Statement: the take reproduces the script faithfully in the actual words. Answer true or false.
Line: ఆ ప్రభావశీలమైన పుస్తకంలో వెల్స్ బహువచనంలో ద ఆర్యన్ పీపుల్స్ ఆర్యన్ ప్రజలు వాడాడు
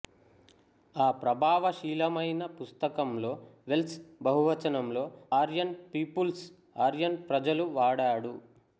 false